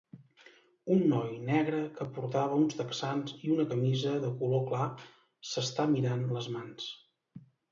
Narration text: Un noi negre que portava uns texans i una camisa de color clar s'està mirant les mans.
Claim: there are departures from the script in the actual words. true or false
false